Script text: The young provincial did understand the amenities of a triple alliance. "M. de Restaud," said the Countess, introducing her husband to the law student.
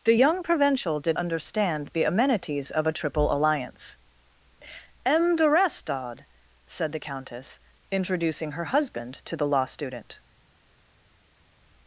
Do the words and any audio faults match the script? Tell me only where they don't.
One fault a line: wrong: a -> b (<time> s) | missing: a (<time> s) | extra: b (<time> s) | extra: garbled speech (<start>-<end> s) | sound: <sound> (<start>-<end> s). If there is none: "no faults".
no faults